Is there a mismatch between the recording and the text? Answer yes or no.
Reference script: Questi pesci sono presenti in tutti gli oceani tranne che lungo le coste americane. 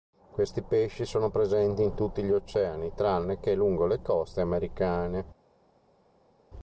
no